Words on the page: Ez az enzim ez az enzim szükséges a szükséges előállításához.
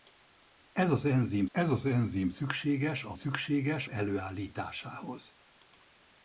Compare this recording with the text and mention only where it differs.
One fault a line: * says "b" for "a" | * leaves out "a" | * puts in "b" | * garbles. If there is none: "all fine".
all fine